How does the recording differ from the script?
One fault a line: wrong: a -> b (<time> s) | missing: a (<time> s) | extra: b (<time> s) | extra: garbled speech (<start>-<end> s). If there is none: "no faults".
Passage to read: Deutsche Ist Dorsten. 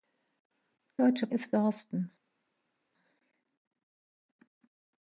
no faults